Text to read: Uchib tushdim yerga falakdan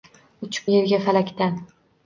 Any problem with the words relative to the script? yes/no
yes